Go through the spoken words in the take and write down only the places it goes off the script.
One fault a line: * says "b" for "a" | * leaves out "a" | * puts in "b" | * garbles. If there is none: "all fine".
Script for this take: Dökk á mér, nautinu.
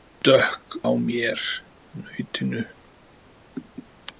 all fine